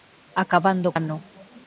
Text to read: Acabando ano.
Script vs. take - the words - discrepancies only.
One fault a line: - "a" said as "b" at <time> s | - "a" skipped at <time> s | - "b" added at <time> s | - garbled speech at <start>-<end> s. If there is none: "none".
none